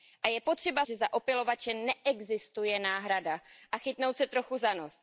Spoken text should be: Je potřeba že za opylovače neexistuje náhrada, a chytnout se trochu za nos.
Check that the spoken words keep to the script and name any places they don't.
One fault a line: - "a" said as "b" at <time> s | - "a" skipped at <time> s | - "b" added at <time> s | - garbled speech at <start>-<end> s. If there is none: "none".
none